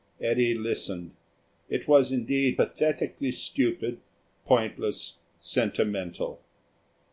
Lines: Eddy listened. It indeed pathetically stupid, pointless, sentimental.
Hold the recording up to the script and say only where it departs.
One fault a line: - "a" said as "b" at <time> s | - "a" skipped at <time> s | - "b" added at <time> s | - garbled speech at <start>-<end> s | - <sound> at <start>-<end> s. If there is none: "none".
- "was" added at 1.9 s